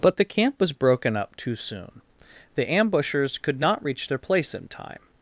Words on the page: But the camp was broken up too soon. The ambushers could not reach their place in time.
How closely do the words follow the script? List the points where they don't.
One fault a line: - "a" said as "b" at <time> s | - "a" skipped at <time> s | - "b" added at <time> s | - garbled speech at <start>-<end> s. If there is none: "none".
none